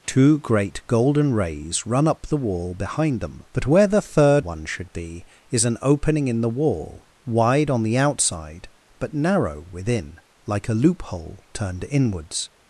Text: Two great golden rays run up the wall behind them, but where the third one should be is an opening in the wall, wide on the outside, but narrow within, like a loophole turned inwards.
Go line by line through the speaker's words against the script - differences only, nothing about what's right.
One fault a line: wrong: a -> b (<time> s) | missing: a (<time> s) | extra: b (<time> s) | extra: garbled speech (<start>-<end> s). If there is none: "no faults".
no faults